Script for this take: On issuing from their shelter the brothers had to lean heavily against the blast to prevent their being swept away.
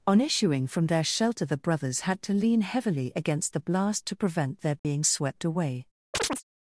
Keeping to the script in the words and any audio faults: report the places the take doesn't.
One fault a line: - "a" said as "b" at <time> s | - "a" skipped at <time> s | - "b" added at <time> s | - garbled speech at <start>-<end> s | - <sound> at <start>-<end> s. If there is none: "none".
- dropout at 4.8-4.8 s
- chirp at 6.1-6.4 s